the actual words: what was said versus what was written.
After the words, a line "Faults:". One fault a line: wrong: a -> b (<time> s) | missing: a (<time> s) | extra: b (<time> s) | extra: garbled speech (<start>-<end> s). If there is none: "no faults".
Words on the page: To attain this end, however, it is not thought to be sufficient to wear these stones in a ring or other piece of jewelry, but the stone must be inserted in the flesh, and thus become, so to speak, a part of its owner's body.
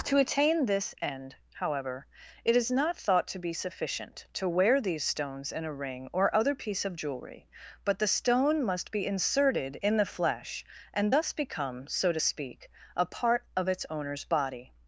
To attain this end, however, it is not thought to be sufficient to wear these stones in a ring or other piece of jewelry, but the stone must be inserted in the flesh, and thus become, so to speak, a part of its owner's body.
Faults:
no faults